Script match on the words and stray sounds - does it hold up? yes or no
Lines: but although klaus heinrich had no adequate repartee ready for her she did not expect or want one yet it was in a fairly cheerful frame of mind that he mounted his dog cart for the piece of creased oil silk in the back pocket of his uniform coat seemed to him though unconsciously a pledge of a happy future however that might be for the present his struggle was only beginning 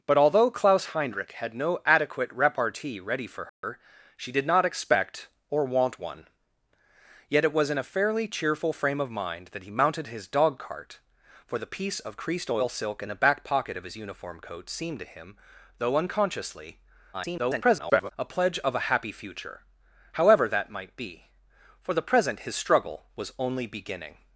no